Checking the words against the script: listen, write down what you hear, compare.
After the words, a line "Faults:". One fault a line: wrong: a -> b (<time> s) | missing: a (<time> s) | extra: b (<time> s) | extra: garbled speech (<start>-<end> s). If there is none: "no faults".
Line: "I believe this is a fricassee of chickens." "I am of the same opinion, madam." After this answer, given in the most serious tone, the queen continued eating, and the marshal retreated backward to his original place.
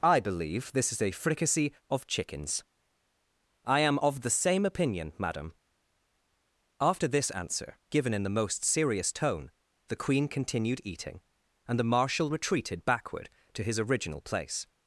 "I believe this is a fricassee of chickens." "I am of the same opinion, madam." After this answer, given in the most serious tone, the queen continued eating, and the marshal retreated backward to his original place.
Faults:
no faults